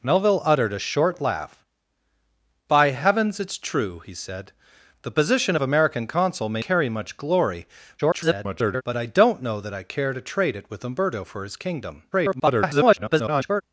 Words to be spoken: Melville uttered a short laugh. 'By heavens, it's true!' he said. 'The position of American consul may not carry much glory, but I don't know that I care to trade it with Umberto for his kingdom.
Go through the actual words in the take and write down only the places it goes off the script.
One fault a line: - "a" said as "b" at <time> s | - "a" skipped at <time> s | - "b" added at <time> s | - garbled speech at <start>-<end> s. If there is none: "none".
- "not" skipped at 6.6 s
- garbled speech at 8.0-8.8 s
- garbled speech at 12.1-13.6 s